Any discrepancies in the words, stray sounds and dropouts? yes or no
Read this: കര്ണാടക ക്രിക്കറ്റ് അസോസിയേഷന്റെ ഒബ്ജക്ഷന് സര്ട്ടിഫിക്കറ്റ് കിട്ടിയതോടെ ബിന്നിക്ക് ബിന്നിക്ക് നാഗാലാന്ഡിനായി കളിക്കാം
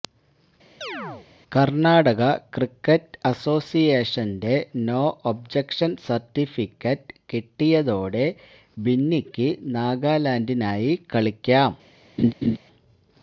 yes